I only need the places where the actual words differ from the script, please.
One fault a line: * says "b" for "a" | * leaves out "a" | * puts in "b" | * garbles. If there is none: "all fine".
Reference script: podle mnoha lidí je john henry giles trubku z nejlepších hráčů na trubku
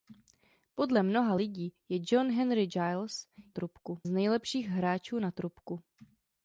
all fine